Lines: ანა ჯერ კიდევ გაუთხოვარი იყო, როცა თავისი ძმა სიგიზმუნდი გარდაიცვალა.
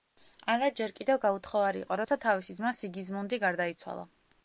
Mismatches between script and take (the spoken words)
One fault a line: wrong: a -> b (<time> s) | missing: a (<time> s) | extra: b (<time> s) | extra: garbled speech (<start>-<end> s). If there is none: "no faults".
no faults